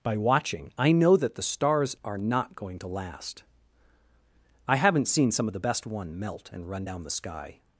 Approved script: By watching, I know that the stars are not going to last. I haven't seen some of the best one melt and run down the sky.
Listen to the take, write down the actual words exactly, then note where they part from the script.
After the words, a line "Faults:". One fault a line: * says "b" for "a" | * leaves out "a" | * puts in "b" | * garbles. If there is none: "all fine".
By watching, I know that the stars are not going to last. I haven't seen some of the best one melt and run down the sky.
Faults:
all fine